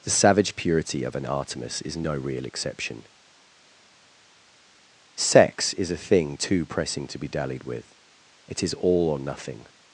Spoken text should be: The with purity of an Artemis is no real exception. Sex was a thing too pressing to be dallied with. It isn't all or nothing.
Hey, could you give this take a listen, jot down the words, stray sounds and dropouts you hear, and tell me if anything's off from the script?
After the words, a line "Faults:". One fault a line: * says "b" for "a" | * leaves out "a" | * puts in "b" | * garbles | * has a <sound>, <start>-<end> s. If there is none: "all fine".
The savage purity of an Artemis is no real exception. Sex is a thing too pressing to be dallied with. It is all or nothing.
Faults:
* says "savage" for "with"
* says "is" for "was"
* says "is" for "isn't"